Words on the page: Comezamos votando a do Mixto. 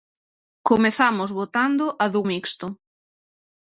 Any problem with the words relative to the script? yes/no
no